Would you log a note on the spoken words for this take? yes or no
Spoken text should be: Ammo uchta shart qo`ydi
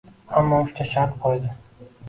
no